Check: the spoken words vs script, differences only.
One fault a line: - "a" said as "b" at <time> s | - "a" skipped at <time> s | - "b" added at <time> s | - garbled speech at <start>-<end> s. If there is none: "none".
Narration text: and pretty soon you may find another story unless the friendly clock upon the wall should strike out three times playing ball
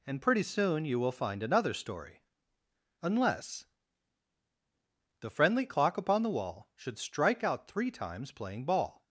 - "may" said as "will" at 1.0 s